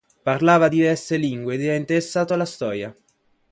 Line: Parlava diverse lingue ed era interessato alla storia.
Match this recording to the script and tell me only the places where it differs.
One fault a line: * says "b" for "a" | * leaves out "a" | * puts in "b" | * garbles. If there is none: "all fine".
all fine